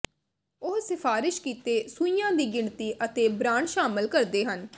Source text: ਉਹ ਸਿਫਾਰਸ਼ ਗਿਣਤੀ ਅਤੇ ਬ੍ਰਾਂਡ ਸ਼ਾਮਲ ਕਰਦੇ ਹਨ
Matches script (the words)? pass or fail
fail